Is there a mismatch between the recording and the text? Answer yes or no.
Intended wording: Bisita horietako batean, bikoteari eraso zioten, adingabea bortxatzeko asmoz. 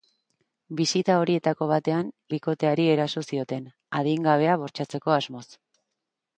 no